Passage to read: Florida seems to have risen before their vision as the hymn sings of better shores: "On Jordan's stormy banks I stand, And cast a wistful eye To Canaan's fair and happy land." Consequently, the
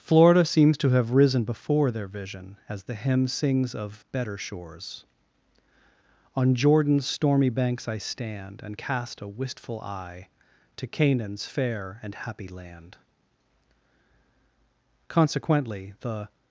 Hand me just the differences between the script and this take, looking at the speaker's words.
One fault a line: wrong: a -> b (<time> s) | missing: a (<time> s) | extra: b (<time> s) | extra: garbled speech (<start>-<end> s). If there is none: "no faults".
no faults